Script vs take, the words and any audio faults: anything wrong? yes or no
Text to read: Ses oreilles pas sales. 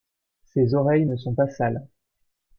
yes